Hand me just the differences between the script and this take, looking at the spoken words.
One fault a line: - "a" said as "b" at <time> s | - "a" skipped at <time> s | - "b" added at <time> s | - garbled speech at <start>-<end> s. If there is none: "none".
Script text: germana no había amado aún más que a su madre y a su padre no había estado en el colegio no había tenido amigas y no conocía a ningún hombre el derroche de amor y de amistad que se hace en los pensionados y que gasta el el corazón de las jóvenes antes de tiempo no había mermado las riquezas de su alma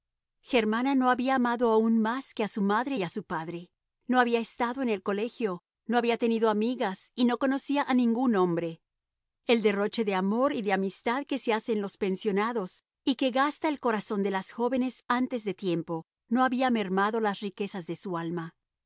- "el" skipped at 13.8 s